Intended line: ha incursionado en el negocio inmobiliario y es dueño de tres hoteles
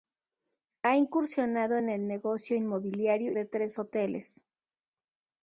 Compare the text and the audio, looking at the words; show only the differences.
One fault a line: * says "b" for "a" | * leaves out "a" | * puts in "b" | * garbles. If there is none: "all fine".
* leaves out "y es dueño"